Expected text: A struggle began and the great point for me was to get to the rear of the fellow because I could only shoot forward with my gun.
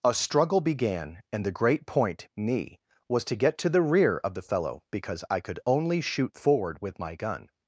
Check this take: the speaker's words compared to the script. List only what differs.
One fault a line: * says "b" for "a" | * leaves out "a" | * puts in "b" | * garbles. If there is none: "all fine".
* leaves out "for"